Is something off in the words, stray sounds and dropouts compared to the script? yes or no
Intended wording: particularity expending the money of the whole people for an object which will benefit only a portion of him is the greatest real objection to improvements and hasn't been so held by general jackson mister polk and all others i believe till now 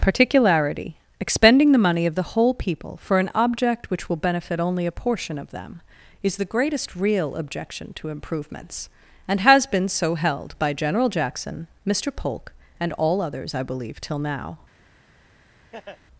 yes